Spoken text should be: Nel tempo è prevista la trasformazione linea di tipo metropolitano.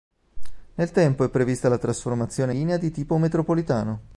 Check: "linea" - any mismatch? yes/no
no